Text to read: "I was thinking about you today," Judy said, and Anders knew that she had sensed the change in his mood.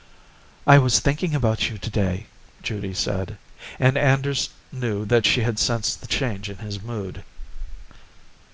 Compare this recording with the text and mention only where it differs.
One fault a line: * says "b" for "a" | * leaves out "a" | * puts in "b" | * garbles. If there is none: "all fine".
all fine